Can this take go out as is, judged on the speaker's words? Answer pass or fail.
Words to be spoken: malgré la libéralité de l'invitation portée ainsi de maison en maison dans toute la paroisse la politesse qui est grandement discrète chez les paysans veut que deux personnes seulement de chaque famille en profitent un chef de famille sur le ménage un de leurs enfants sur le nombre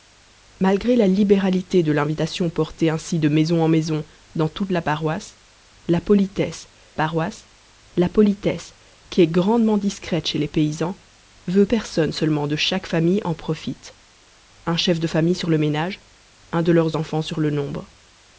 fail